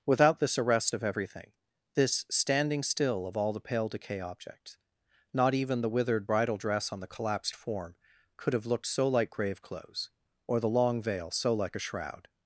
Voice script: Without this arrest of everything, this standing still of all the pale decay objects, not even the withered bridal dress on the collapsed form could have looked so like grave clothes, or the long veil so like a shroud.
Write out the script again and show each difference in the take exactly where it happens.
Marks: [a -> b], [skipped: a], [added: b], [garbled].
Without this arrest of everything, this standing still of all the pale decay objects, not even the withered bridal dress on the collapsed form could have looked so like grave clothes, or the long veil so like a shroud.